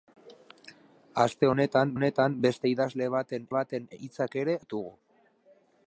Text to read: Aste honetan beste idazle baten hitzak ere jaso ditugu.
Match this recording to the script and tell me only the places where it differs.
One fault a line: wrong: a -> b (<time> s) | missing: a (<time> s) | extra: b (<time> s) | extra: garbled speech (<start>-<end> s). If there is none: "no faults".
extra: honetan (1.9 s)
extra: baten (3.6 s)
missing: jaso (4.6 s)